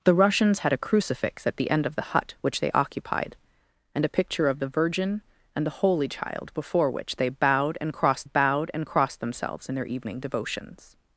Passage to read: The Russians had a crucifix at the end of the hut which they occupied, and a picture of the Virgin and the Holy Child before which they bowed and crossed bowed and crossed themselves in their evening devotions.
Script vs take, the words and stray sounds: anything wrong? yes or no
no